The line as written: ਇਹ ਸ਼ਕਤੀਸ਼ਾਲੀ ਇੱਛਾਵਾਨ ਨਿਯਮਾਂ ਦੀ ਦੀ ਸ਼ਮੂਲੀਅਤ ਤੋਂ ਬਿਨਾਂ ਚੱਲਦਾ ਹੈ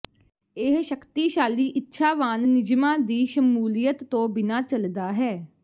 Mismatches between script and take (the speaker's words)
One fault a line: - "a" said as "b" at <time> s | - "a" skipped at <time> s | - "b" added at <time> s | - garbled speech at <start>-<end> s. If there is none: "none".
- "ਦੀ" skipped at 3.2 s